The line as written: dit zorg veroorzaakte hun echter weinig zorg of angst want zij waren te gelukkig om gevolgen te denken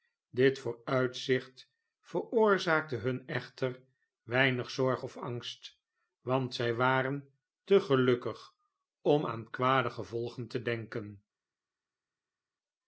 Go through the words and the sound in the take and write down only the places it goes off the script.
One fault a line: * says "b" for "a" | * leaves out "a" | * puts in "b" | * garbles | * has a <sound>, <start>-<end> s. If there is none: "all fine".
* says "vooruitzicht" for "zorg"
* puts in "aan kwade"